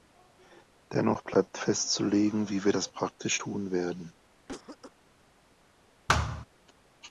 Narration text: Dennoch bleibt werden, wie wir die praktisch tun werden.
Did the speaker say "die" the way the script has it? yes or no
no